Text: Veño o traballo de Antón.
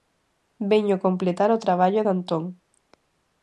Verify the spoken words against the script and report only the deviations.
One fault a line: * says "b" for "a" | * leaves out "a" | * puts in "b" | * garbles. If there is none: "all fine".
* puts in "completar"